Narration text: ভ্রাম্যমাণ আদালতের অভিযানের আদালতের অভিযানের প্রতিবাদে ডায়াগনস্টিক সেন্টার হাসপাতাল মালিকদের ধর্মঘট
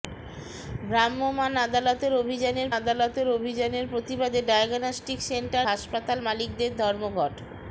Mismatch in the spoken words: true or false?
false